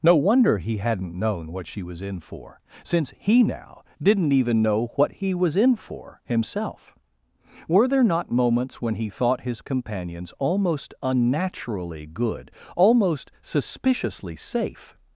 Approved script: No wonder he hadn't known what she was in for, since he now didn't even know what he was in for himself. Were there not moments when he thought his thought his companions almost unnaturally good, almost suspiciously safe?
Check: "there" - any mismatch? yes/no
no